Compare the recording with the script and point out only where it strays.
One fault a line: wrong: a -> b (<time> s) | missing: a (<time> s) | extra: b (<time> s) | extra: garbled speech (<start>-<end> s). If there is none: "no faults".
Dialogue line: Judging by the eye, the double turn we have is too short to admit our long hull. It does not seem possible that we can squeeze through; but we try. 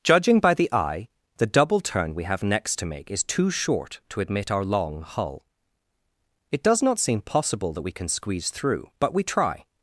extra: next to make (2.4 s)